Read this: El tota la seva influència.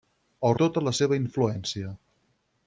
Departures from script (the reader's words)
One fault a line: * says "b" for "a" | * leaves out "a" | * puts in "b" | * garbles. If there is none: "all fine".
all fine